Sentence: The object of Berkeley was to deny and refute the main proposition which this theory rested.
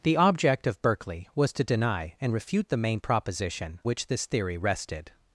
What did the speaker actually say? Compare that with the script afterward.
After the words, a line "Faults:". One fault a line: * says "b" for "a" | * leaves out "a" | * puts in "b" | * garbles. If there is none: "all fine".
The object of Berkeley was to deny and refute the main proposition which this theory rested.
Faults:
all fine